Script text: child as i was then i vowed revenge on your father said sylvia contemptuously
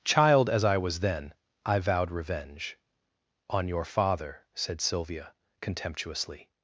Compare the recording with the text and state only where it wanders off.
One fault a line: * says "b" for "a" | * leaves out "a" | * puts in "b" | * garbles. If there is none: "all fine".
all fine